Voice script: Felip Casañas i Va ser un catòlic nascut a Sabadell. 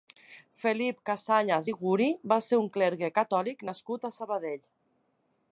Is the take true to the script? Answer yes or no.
no